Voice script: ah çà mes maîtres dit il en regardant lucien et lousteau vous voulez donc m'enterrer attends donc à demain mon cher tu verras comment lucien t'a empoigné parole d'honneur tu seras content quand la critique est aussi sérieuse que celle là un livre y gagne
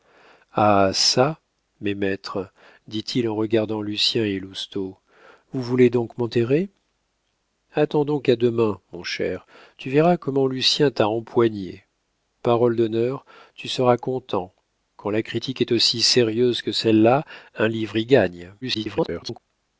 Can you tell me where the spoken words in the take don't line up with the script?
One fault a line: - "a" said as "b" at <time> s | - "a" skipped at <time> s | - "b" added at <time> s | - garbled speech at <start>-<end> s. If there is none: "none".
- garbled speech at 18.6-19.4 s